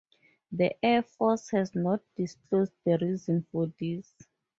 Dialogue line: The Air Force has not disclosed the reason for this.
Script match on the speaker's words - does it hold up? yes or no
yes